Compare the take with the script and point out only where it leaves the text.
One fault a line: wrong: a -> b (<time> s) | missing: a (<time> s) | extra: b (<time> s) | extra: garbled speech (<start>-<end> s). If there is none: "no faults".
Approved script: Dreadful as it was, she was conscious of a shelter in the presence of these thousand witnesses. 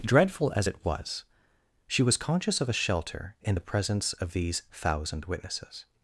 no faults